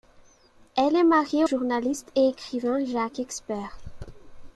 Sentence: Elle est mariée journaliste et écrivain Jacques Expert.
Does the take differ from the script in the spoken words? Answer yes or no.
no